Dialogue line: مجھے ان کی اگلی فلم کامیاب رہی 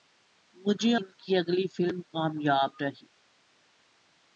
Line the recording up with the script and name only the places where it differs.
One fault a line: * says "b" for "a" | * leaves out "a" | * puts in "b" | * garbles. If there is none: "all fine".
all fine